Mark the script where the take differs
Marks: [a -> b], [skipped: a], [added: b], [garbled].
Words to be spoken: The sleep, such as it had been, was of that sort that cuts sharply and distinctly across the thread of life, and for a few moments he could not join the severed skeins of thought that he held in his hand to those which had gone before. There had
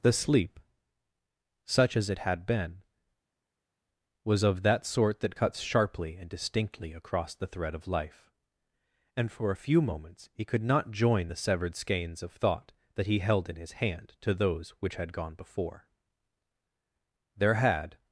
The sleep, such as it had been, was of that sort that cuts sharply and distinctly across the thread of life, and for a few moments he could not join the severed skeins of thought that he held in his hand to those which had gone before. There had